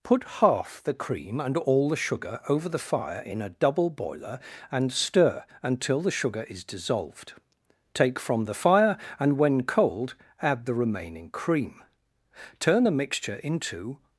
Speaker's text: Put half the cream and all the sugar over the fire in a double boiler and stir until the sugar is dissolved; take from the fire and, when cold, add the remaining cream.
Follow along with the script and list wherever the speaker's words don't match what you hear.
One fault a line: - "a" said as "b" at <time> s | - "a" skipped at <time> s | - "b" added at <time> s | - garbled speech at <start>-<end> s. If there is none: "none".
- "Turn the mixture into" added at 12.6 s